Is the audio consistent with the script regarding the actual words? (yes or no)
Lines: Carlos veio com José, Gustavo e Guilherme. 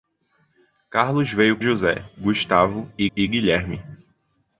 no